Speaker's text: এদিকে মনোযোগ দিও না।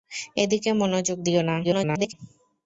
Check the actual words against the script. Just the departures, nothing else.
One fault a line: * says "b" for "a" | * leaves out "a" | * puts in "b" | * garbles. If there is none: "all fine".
* garbles